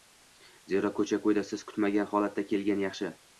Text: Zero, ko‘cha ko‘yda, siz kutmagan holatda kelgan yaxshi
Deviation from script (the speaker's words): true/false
false